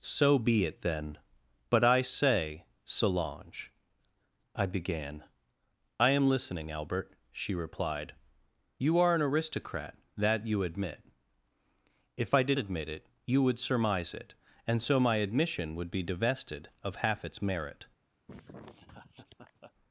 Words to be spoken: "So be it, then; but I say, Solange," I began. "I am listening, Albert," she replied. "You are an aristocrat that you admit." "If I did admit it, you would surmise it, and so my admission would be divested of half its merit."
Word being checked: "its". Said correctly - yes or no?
yes